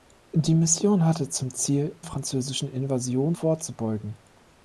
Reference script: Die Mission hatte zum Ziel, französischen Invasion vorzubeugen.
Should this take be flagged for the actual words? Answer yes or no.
no